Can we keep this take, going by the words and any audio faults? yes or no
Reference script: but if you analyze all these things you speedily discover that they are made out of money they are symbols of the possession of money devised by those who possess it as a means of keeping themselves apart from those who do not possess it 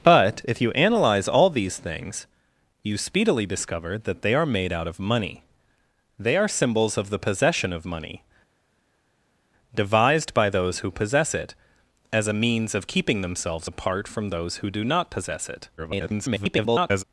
no